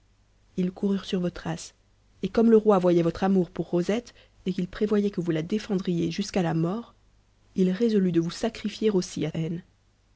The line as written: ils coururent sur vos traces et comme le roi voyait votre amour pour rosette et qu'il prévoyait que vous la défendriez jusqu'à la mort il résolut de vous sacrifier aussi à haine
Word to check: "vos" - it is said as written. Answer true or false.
true